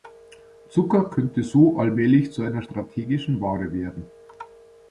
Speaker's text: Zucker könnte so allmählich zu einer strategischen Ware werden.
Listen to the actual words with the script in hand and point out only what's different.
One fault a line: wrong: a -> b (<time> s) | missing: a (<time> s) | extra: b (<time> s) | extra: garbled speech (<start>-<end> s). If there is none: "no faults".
no faults